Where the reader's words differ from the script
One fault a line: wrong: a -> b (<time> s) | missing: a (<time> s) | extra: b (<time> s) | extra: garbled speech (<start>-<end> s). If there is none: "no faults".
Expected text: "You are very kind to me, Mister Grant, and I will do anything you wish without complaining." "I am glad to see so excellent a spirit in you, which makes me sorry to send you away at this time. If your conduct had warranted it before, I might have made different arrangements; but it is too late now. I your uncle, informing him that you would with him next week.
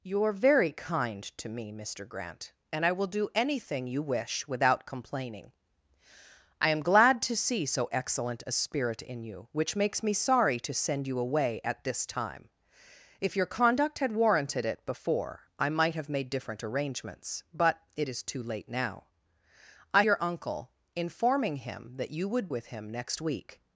no faults